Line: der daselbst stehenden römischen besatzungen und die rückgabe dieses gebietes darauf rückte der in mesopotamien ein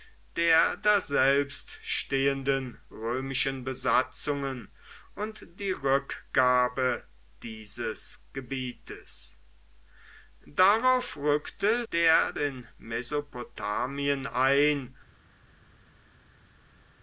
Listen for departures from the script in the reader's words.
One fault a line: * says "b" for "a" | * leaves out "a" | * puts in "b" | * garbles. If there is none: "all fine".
all fine